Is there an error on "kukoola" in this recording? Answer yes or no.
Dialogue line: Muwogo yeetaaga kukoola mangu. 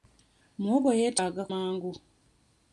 yes